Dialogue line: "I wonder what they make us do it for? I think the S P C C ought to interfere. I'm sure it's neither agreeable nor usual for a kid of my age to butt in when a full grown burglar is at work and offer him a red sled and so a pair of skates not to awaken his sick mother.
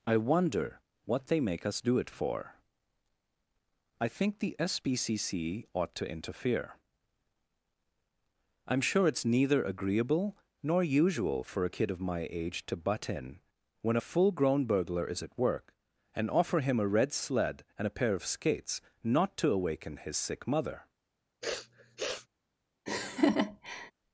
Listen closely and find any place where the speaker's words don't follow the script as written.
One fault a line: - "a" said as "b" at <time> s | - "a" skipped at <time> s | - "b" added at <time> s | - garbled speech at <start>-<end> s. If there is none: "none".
- "so" skipped at 17.9 s